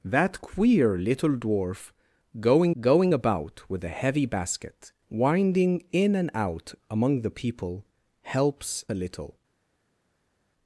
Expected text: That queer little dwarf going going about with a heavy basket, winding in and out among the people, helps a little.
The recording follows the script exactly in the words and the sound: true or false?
true